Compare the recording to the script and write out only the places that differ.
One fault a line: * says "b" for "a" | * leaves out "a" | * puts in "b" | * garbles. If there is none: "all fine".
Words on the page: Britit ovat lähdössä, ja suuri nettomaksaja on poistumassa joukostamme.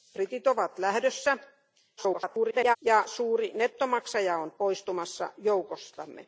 * garbles